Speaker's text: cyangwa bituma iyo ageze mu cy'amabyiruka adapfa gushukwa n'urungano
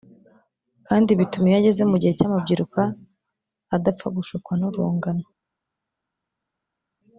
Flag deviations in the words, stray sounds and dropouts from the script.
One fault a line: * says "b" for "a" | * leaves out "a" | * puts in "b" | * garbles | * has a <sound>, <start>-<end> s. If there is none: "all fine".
* says "kandi" for "cyangwa"
* puts in "gihe"